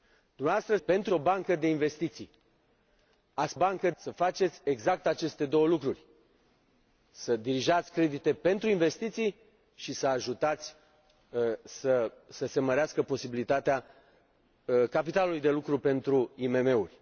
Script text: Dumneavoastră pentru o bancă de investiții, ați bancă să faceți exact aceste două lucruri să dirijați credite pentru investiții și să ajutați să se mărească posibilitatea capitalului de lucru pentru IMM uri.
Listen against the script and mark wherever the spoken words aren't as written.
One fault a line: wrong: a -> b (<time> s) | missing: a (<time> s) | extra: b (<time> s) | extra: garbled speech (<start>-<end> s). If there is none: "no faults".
no faults